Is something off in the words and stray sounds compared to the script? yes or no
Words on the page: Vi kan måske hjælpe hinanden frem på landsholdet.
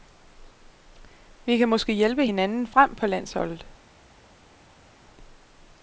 no